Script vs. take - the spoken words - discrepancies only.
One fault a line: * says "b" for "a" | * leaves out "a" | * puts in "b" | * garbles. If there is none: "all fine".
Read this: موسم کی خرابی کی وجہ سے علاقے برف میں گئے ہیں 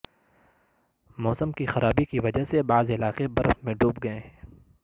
* puts in "بعض"
* puts in "ڈوب"